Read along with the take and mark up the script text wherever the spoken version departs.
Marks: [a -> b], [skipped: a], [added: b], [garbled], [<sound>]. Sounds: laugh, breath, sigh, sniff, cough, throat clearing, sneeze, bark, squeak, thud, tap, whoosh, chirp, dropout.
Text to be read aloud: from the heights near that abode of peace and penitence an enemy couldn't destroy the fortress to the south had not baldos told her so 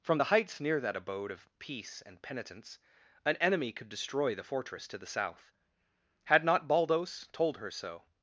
from the heights near that abode of peace and penitence an enemy [couldn't -> could] destroy the fortress to the south had not baldos told her so